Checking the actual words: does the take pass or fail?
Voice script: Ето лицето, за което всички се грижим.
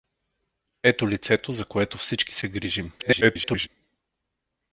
fail